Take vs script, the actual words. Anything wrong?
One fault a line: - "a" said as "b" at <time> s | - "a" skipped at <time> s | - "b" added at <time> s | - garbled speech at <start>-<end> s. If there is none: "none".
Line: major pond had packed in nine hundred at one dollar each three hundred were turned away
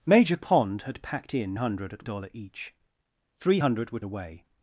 - "nine" skipped at 1.6 s
- "one" skipped at 2.1 s
- "turned" skipped at 4.0 s